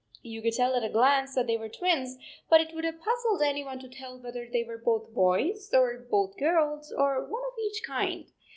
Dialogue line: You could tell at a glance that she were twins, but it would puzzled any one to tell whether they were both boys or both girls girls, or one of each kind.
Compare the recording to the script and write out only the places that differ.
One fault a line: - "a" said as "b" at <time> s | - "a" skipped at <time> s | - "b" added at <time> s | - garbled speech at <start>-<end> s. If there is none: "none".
- "she" said as "they" at 1.4 s
- "have" added at 2.9 s
- "girls" skipped at 6.9 s